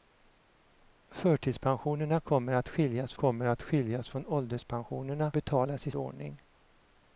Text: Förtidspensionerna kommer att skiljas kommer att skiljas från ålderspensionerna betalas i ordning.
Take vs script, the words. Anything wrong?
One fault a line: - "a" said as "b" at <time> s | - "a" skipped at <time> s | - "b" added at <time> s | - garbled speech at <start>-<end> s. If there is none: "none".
none